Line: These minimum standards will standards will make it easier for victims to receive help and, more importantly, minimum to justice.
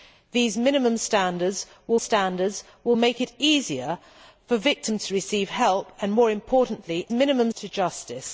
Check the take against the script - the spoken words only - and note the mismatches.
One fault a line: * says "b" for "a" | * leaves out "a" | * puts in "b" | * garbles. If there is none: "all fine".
all fine